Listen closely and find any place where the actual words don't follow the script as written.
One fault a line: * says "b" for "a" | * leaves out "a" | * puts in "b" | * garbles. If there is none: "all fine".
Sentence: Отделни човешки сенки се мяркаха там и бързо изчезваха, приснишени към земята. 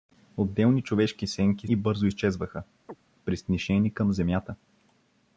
* leaves out "се мяркаха там"